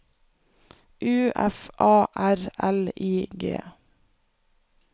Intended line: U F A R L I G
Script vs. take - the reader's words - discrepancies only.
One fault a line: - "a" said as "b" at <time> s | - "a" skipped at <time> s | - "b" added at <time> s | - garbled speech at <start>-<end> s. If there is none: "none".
none